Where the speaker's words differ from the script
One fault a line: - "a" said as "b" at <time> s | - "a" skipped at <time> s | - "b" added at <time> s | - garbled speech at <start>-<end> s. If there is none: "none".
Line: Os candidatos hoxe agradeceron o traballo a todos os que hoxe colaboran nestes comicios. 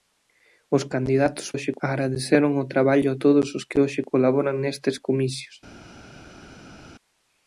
none